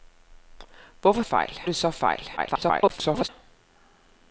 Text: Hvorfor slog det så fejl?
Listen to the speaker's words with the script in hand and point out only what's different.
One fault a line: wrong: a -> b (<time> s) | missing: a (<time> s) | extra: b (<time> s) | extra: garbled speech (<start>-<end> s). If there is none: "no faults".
wrong: slog -> fejl (1.2 s)
extra: garbled speech (2.4-3.3 s)